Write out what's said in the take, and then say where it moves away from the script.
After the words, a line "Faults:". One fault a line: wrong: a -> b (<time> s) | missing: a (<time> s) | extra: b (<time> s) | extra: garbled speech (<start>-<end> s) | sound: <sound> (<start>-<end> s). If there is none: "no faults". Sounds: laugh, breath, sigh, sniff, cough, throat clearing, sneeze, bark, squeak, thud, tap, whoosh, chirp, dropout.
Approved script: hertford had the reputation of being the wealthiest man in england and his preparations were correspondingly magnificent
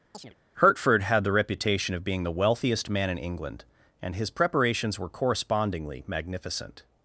hertford had the reputation of being the wealthiest man in england and his preparations were correspondingly magnificent
Faults:
sound: chirp (0.1-0.3 s)